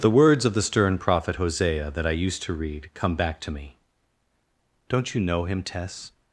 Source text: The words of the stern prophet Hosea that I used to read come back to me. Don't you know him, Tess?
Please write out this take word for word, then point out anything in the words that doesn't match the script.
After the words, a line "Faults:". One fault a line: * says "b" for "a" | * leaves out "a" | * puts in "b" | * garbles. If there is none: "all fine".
The words of the stern prophet Hosea that I used to read come back to me. Don't you know him, Tess?
Faults:
all fine